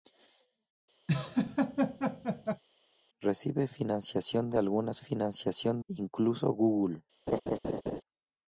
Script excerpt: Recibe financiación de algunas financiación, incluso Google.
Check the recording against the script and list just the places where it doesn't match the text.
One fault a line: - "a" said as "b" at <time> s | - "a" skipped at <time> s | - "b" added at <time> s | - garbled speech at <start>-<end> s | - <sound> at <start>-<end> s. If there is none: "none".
- laugh at 1.1-2.6 s
- laugh at 7.3-8.0 s